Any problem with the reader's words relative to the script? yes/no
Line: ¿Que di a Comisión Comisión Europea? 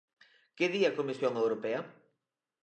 yes